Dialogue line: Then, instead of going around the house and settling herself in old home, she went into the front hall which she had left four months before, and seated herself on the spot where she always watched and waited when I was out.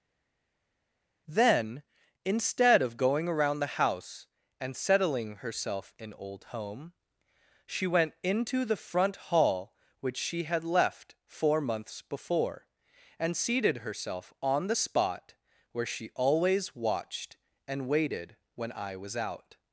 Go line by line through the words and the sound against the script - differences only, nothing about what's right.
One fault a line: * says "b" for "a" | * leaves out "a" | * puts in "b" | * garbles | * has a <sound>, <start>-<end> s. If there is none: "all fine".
all fine